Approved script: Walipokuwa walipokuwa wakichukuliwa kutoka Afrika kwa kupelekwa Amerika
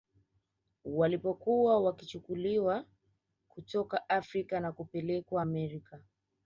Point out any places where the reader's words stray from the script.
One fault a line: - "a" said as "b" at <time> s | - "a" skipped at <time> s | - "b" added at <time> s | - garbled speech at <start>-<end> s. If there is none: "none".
- "walipokuwa" skipped at 1.8 s
- "kwa" said as "na" at 4.6 s